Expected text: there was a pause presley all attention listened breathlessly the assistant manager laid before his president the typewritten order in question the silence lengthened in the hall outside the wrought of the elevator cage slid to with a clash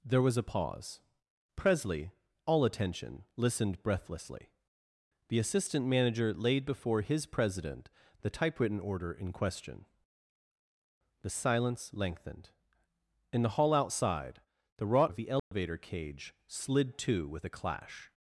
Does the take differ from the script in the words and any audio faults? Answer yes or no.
yes